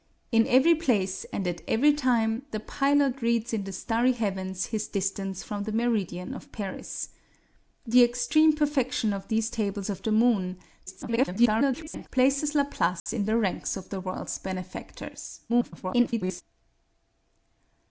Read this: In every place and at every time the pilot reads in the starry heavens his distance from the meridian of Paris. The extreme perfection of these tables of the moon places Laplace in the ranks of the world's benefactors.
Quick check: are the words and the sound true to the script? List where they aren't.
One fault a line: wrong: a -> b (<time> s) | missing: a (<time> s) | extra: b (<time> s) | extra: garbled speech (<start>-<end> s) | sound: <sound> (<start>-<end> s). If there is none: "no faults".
extra: garbled speech (10.9-12.1 s)
sound: dropout (13.0-13.1 s)
extra: garbled speech (15.5-16.4 s)